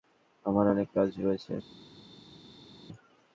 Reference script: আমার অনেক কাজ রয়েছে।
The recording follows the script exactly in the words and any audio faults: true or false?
true